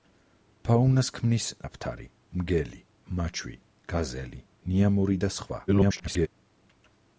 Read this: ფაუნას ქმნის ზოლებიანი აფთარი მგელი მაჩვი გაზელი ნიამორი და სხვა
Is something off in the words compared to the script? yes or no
yes